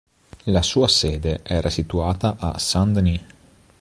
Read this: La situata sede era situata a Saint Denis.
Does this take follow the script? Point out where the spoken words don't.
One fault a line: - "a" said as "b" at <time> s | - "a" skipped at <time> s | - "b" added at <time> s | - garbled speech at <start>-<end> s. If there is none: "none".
- "situata" said as "sua" at 0.6 s